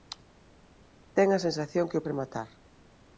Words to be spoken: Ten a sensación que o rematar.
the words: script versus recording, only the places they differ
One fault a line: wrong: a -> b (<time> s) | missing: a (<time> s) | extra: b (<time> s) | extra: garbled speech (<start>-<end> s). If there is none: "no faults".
no faults